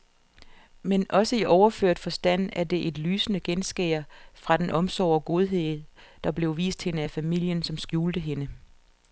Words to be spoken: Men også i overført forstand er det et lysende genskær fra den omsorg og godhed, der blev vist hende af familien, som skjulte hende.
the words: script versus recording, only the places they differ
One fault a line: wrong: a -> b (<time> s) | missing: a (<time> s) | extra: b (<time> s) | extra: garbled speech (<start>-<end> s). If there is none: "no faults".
no faults